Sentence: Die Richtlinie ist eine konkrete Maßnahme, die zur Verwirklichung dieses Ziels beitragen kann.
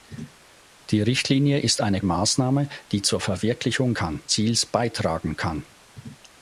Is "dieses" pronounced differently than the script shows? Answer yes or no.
yes